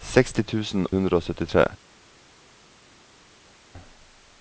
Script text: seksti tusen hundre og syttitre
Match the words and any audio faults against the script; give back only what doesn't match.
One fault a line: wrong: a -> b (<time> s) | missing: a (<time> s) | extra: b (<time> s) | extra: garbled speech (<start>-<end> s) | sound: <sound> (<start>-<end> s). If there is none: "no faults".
no faults